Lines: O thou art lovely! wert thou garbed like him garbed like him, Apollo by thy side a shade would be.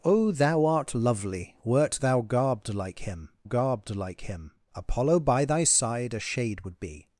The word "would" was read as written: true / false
true